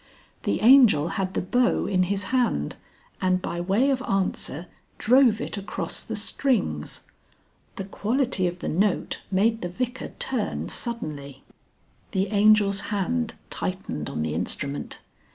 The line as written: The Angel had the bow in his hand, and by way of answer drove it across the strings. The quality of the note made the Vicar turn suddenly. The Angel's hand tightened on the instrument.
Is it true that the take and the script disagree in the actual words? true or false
false